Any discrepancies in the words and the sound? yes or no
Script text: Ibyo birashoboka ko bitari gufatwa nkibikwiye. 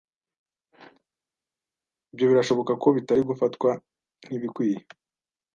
no